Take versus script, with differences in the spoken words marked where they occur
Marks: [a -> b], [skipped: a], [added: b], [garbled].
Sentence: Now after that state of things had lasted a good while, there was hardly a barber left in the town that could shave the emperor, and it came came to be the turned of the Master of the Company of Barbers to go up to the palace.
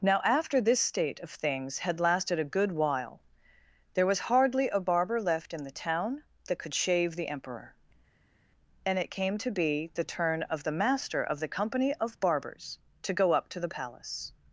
Now after [that -> this] state of things had lasted a good while, there was hardly a barber left in the town that could shave the emperor, and it came [skipped: came] to be the [turned -> turn] of the Master of the Company of Barbers to go up to the palace.